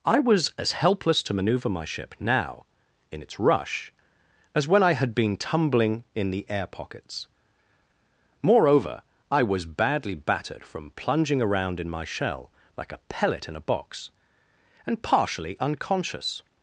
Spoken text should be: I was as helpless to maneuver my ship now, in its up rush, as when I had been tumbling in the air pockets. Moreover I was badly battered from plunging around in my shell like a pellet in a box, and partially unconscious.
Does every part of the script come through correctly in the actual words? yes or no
no